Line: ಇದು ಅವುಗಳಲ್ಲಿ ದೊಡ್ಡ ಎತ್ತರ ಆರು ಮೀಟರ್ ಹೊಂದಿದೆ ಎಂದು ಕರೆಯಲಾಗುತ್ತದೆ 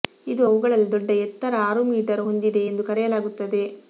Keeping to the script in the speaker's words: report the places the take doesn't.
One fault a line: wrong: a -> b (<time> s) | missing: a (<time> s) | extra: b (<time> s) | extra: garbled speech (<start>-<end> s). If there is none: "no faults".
no faults